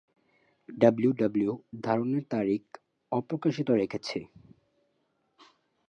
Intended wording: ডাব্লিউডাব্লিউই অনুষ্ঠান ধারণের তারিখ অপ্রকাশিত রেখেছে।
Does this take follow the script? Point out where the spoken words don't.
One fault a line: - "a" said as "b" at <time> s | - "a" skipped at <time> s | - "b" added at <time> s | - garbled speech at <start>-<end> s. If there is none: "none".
- "অনুষ্ঠান" skipped at 1.6 s